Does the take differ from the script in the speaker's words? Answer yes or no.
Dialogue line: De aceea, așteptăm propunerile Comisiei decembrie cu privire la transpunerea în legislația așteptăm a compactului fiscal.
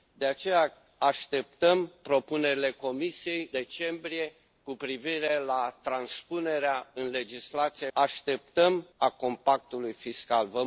no